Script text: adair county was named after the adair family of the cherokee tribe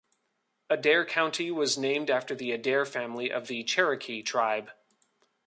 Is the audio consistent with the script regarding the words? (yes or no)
yes